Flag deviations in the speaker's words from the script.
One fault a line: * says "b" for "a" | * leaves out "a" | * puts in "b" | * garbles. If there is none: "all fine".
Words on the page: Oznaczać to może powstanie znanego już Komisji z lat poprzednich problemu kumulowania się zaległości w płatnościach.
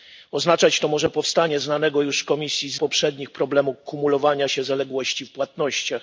* leaves out "lat"